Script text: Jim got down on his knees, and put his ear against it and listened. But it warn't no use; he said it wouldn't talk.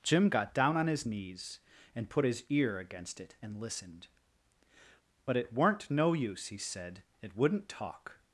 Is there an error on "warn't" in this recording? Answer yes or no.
yes